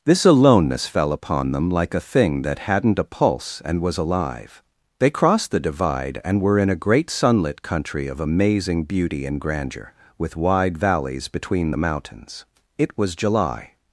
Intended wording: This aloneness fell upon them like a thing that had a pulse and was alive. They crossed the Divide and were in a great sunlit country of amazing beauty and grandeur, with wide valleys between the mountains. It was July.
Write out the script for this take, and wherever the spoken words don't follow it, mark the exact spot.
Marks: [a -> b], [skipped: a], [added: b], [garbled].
This aloneness fell upon them like a thing that [had -> hadn't] a pulse and was alive. They crossed the Divide and were in a great sunlit country of amazing beauty and grandeur, with wide valleys between the mountains. It was July.